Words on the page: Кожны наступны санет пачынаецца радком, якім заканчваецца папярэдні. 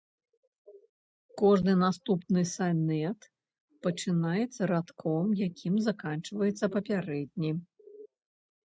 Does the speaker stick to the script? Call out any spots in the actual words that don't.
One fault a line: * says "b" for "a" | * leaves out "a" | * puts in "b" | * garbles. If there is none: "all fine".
all fine